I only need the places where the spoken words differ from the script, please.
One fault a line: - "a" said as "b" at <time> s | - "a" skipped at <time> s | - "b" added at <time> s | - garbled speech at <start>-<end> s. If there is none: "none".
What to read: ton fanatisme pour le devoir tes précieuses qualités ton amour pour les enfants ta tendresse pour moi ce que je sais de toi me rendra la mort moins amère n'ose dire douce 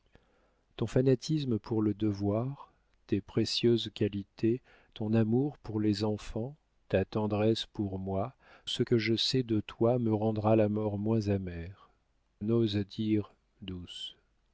none